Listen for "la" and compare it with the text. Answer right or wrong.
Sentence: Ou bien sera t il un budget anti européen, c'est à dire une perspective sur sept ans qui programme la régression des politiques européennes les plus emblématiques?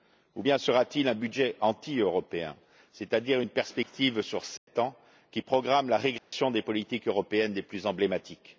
right